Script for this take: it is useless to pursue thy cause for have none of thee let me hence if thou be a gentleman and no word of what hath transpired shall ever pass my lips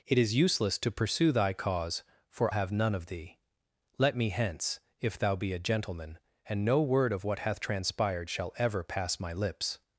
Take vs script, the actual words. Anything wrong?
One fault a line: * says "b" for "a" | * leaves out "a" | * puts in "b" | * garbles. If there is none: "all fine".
all fine